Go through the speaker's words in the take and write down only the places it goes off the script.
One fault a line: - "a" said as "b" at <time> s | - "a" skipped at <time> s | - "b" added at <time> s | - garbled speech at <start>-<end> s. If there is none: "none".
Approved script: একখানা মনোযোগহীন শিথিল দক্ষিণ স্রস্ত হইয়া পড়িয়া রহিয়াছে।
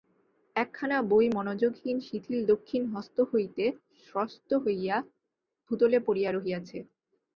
- "বই" added at 1.1 s
- "হস্ত হইতে" added at 2.9 s
- "ভূতলে" added at 5.7 s